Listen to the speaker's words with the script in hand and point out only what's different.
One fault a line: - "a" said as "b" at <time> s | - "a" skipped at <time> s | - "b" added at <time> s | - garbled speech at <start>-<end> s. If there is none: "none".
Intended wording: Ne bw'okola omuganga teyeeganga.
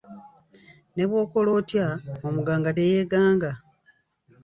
- "otya" added at 1.6 s